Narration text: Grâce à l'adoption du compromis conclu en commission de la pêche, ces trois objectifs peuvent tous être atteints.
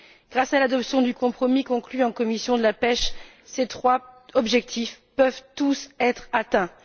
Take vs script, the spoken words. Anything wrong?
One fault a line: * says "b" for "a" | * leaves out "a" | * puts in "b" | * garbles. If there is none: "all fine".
all fine